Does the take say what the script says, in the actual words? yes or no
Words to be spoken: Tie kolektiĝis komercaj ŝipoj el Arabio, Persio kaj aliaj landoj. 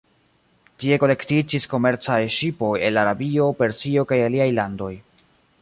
yes